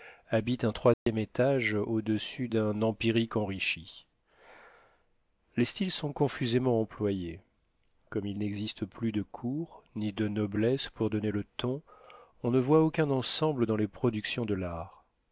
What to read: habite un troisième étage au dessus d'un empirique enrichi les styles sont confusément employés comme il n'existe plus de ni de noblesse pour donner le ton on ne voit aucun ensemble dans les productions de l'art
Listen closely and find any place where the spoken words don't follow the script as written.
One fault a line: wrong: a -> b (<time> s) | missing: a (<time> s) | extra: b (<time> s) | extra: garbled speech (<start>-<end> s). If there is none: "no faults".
extra: cour (9.2 s)